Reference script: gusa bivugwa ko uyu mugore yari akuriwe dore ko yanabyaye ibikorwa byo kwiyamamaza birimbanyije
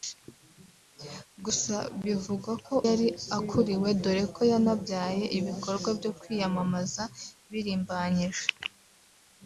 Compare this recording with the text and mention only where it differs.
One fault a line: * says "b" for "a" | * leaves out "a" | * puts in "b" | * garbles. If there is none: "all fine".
* leaves out "uyu mugore"